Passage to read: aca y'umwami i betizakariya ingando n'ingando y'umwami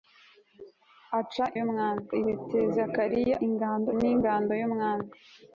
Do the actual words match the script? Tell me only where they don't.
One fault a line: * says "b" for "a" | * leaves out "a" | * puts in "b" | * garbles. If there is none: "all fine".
all fine